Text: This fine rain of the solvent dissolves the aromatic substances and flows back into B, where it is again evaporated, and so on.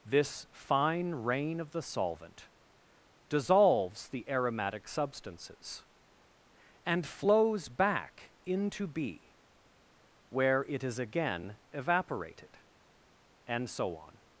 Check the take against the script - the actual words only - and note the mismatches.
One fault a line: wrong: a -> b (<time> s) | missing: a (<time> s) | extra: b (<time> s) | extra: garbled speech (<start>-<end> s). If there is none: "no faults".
no faults